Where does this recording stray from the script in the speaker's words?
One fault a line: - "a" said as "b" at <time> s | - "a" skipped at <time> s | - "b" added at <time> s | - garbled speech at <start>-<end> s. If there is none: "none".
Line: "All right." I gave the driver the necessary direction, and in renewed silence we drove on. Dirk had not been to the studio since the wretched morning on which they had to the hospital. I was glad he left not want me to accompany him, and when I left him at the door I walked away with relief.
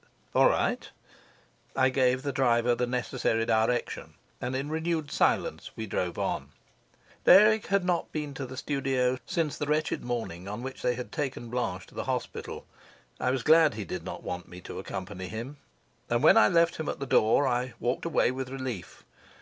- "taken Blanche" added at 11.1 s
- "left" said as "did" at 13.8 s